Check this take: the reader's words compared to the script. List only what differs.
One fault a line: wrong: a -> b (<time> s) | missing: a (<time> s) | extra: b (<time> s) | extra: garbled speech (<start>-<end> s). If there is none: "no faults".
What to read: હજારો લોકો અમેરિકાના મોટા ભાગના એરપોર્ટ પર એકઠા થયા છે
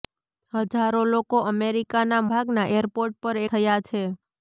missing: મોટા (2.2 s)
missing: એકઠા (3.4 s)